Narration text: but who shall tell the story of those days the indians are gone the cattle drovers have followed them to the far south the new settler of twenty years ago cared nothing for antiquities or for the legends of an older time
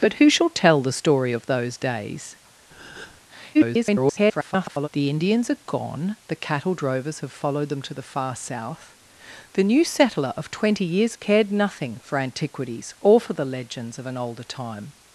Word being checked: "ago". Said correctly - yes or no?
no